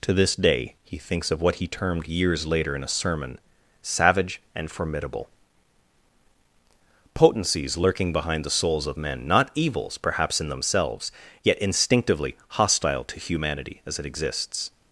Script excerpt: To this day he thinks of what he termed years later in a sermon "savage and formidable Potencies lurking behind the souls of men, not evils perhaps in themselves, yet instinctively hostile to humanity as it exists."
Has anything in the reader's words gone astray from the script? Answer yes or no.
no